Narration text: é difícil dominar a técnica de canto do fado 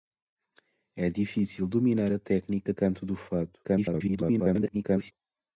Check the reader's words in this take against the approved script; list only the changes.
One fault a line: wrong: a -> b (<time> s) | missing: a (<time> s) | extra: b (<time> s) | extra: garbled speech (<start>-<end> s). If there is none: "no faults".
missing: de (2.7 s)
extra: garbled speech (3.6-5.1 s)